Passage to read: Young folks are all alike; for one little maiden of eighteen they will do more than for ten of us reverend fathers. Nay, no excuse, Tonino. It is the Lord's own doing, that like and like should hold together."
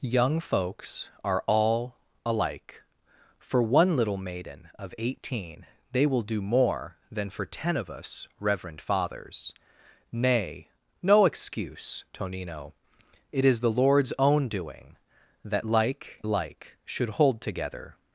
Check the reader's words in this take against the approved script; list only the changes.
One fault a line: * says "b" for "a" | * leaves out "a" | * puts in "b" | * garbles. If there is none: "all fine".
* leaves out "and"